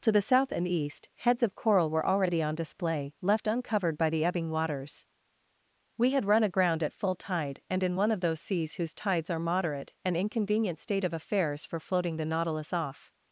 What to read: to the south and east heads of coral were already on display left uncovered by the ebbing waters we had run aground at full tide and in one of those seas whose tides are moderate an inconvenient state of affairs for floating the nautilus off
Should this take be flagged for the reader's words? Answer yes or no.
no